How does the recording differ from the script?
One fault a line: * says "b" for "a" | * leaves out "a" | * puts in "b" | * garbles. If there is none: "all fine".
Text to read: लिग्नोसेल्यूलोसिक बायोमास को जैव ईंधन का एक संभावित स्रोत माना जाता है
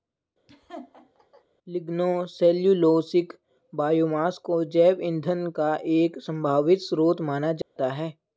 all fine